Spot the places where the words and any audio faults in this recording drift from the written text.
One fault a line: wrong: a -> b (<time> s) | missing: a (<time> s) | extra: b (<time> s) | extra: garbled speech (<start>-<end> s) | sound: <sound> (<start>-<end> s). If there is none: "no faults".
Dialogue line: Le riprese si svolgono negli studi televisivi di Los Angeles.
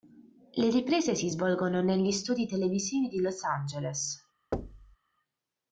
sound: thud (4.5-5.0 s)